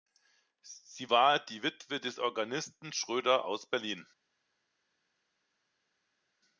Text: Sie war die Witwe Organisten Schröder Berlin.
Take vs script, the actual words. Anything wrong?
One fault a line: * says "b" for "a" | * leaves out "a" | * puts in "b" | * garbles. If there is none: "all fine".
* puts in "des"
* puts in "aus"